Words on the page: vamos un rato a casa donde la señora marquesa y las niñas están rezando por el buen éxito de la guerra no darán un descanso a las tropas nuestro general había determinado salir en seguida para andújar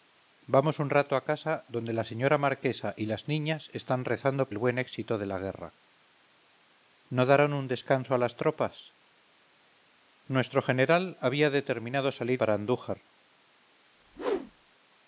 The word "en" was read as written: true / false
false